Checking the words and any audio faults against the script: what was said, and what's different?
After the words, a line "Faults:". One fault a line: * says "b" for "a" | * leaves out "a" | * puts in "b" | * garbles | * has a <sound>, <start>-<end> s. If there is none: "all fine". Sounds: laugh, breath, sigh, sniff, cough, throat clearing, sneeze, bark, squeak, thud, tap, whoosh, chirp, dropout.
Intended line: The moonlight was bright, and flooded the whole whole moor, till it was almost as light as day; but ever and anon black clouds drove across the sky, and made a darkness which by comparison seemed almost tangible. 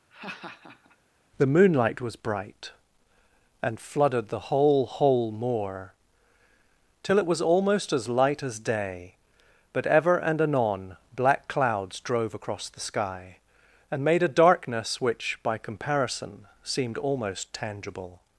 The moonlight was bright, and flooded the whole whole moor, till it was almost as light as day; but ever and anon black clouds drove across the sky, and made a darkness which by comparison seemed almost tangible.
Faults:
* has a laugh, 0.1-1.0 s